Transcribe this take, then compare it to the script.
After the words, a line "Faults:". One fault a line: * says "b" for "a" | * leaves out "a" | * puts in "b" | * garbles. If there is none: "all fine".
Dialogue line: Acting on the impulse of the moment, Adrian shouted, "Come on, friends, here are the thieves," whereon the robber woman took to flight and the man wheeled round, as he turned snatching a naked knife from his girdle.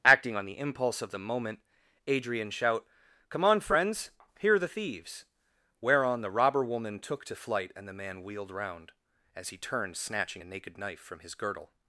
Acting on the impulse of the moment, Adrian shout, "Come on, friends, here are the thieves," whereon the robber woman took to flight and the man wheeled round, as he turned snatching a naked knife from his girdle.
Faults:
* says "shout" for "shouted"